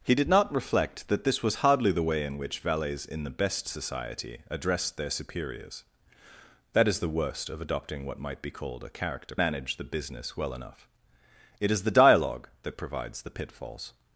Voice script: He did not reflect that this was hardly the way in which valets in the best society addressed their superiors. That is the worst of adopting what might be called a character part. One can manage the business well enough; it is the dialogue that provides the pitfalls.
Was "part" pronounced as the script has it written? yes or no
no